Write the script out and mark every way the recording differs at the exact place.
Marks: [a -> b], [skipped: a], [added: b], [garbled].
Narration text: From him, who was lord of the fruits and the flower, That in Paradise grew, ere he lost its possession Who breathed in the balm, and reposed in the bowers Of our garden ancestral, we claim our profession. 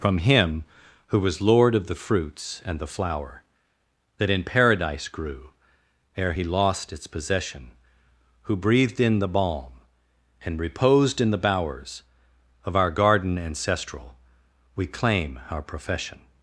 From him, who was lord of the fruits and the flower, That in Paradise grew, ere he lost its possession Who breathed in the balm, and reposed in the bowers Of our garden ancestral, we claim our profession.